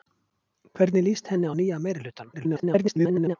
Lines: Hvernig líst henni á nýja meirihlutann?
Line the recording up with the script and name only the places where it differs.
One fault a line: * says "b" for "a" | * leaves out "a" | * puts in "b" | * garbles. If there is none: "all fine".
* garbles